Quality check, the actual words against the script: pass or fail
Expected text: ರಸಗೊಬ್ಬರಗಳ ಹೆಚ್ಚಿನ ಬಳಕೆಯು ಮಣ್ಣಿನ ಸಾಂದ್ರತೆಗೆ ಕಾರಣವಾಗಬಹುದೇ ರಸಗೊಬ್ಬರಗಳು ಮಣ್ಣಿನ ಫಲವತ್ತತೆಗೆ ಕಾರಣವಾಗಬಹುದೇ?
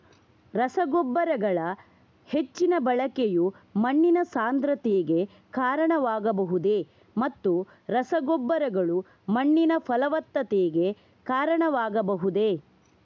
fail